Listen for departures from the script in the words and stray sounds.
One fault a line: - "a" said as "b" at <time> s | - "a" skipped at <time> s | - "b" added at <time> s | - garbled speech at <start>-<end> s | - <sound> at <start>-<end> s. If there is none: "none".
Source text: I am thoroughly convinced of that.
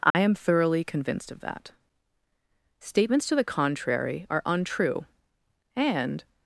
- dropout at 0.1-0.1 s
- "Statements to the contrary are untrue and" added at 2.8 s